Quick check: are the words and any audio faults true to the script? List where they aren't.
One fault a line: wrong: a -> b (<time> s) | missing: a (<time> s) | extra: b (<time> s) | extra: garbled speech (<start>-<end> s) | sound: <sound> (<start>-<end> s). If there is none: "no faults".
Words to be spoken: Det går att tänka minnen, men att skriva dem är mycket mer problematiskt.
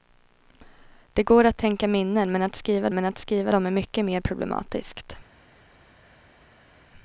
extra: men att skriva (2.9 s)